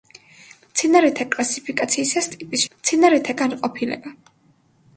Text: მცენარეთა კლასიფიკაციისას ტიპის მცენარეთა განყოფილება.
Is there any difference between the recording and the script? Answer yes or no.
no